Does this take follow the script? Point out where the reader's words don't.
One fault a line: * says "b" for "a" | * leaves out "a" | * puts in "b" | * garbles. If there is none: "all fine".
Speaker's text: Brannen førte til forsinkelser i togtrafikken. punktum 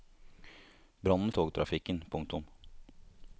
* leaves out "førte til forsinkelser"